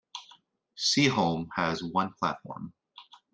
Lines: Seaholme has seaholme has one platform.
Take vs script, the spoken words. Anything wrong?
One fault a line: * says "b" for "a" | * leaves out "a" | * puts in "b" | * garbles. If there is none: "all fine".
* leaves out "seaholme has"